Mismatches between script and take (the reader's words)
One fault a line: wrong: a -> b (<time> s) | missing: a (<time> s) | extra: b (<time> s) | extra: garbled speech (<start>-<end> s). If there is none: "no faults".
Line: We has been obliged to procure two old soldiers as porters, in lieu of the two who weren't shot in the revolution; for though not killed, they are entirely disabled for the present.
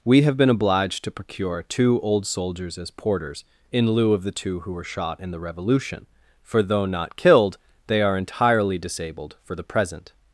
wrong: has -> have (0.2 s)
wrong: weren't -> were (4.7 s)